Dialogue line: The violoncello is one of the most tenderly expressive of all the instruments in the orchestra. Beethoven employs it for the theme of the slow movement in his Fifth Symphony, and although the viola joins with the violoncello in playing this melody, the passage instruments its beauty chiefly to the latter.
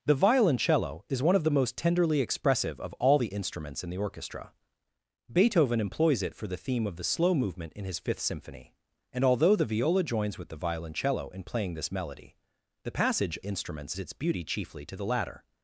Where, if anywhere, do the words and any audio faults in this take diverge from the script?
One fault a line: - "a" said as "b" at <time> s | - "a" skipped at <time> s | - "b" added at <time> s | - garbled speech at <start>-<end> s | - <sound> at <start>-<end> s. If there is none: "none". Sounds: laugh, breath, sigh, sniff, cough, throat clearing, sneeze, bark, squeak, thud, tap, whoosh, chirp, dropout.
none